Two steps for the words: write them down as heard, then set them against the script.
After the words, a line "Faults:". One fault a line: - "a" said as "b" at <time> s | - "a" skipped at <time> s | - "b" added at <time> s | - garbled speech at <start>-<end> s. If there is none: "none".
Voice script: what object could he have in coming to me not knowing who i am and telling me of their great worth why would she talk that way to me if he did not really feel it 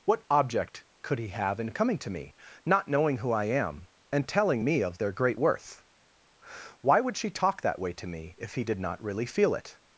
what object could he have in coming to me not knowing who i am and telling me of their great worth why would she talk that way to me if he did not really feel it
Faults:
none